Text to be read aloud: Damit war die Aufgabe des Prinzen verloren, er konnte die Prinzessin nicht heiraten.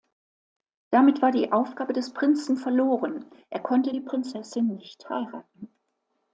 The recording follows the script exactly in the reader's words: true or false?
true